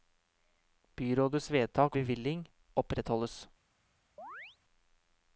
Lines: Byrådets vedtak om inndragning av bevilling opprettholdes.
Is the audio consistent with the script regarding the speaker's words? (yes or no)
no